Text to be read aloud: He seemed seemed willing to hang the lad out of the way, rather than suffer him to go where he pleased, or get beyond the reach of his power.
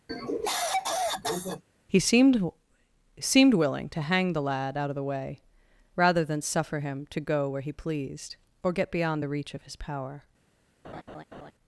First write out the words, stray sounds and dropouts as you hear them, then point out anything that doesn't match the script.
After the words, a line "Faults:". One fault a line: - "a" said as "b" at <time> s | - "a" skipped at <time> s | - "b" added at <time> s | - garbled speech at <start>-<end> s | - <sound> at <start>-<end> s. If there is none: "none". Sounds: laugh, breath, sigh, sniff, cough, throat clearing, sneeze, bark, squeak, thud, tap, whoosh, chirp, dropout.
He seemed seemed willing to hang the lad out of the way, rather than suffer him to go where he pleased, or get beyond the reach of his power.
Faults:
- cough at 0.1-1.6 s
- laugh at 10.8-11.5 s